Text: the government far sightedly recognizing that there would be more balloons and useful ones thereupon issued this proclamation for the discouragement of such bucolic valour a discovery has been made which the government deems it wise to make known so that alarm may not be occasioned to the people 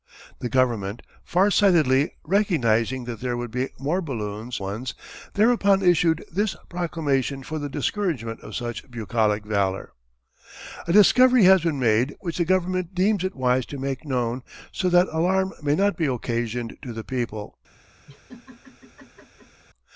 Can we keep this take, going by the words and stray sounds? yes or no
no